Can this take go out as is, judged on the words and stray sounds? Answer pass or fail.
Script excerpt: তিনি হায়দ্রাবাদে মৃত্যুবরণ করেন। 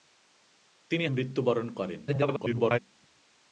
fail